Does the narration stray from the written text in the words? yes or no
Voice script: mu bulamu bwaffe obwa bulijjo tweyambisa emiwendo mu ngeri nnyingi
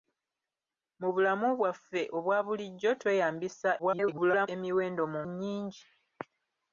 yes